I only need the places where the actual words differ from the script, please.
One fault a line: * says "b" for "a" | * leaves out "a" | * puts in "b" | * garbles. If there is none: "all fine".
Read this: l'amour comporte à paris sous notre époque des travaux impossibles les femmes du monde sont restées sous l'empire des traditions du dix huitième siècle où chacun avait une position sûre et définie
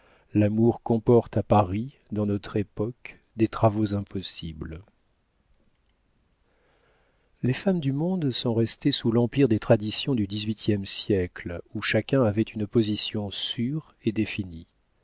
* says "dans" for "sous"